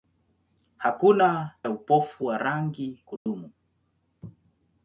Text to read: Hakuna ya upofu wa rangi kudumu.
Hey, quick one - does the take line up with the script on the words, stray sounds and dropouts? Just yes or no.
no